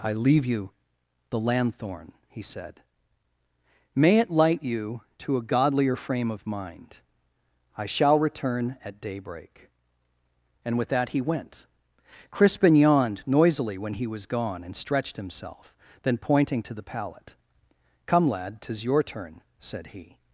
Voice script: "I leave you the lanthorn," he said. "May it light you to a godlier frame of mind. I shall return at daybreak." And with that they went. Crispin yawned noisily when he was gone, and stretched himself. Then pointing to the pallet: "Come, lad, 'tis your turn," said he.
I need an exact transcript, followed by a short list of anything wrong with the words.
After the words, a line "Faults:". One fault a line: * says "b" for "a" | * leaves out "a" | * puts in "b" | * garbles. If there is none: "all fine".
"I leave you the lanthorn," he said. "May it light you to a godlier frame of mind. I shall return at daybreak." And with that he went. Crispin yawned noisily when he was gone, and stretched himself. Then pointing to the pallet: "Come, lad, 'tis your turn," said he.
Faults:
* says "he" for "they"